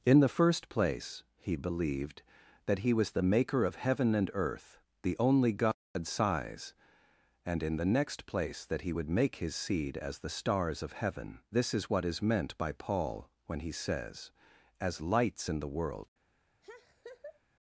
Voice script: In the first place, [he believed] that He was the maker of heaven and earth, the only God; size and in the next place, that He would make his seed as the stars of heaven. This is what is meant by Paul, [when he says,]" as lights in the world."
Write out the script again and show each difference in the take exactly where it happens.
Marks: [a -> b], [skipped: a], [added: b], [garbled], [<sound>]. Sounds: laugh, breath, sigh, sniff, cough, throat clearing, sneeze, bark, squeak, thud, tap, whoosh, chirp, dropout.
In the first place, [he believed] that He was the maker of heaven and earth, the only God; size and in the next place, that He would make his seed as the stars of heaven. This is what is meant by Paul, [when he says,]" as lights in the world." [laugh]